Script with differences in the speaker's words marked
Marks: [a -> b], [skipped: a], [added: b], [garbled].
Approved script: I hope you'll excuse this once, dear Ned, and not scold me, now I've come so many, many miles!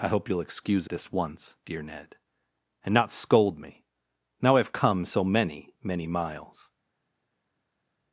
I hope you'll excuse this once, dear Ned, and not scold me, now I've come so many, many miles!